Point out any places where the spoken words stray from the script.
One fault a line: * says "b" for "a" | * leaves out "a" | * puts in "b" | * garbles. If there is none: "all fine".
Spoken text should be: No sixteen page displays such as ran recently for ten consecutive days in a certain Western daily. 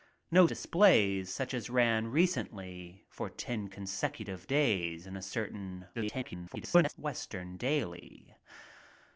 * leaves out "sixteen page"
* garbles